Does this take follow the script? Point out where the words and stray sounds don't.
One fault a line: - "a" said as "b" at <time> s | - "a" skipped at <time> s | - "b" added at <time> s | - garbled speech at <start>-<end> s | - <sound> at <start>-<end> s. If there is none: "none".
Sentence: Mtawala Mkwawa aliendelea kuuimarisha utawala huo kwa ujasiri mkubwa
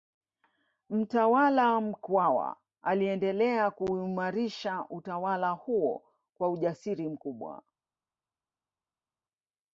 none